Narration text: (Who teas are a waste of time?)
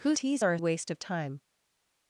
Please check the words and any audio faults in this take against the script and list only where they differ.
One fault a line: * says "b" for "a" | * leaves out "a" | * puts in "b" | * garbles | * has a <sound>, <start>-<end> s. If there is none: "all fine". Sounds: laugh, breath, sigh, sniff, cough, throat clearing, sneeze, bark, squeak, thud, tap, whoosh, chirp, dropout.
all fine